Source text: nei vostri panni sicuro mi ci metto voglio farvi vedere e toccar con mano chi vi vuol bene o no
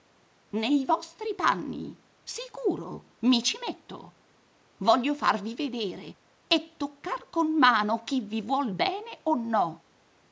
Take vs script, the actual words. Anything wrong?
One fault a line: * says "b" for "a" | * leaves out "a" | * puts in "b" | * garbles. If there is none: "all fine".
all fine